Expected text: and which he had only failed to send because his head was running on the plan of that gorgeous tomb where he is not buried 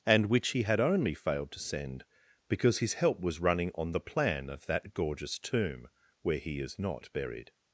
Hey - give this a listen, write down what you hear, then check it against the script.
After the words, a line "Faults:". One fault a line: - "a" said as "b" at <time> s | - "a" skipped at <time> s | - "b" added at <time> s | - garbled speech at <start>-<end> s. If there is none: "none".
and which he had only failed to send because his help was running on the plan of that gorgeous tomb where he is not buried
Faults:
- "head" said as "help" at 3.0 s